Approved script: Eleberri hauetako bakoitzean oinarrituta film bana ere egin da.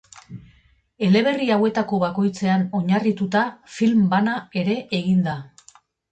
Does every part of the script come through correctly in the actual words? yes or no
yes